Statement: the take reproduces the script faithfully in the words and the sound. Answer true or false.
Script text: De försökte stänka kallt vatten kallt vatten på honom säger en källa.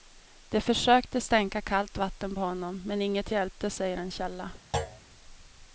false